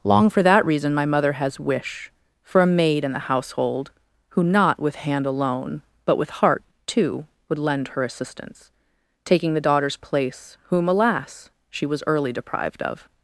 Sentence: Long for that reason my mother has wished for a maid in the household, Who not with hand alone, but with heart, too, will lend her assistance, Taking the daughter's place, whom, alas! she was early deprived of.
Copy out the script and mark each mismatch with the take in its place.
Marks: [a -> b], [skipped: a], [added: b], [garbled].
Long for that reason my mother has [wished -> wish] for a maid in the household, Who not with hand alone, but with heart, too, [will -> would] lend her assistance, Taking the daughter's place, whom, alas! she was early deprived of.